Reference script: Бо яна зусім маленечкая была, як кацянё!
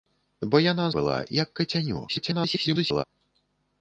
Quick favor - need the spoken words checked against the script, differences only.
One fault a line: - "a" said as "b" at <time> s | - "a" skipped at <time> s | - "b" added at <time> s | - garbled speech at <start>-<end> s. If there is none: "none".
- "зусім маленечкая" skipped at 0.9 s
- garbled speech at 2.1-3.0 s